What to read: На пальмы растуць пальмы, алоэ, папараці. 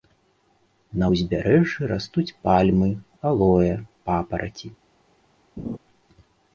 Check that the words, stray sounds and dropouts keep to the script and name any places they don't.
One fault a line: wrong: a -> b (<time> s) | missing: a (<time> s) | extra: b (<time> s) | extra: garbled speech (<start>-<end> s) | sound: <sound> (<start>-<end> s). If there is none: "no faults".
wrong: пальмы -> ўзбярэжжы (1.1 s)
sound: laugh (5.6-5.8 s)